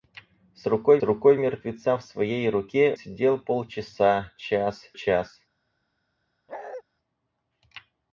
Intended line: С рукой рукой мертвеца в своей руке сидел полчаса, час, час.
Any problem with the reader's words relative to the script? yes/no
no